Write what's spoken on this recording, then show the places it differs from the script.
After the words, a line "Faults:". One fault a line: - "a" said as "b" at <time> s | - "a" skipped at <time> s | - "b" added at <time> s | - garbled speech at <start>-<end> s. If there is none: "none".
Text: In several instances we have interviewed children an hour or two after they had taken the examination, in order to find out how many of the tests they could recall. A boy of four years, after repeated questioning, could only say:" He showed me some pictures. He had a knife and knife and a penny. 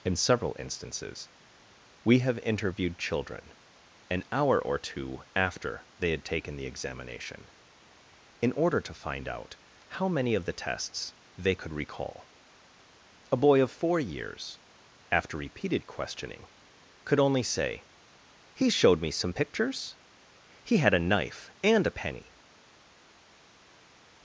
In several instances we have interviewed children an hour or two after they had taken the examination, in order to find out how many of the tests they could recall. A boy of four years, after repeated questioning, could only say:" He showed me some pictures. He had a knife and a penny.
Faults:
- "knife and" skipped at 21.9 s